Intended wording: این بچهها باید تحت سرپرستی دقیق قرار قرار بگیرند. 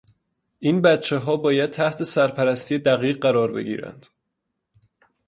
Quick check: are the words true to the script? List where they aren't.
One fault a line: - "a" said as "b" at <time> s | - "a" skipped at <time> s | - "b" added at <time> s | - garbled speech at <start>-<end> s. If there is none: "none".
- "قرار" skipped at 3.5 s